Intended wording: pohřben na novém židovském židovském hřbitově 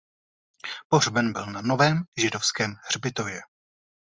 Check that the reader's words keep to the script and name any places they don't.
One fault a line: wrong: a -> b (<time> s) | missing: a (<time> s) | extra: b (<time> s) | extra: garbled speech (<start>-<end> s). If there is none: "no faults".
extra: byl (1.3 s)
missing: židovském (2.7 s)